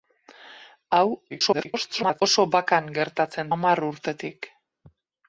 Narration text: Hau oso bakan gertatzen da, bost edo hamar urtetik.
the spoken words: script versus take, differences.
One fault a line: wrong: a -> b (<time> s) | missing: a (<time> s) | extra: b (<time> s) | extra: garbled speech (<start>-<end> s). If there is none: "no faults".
extra: garbled speech (1.3-2.2 s)
missing: da bost edo (3.5 s)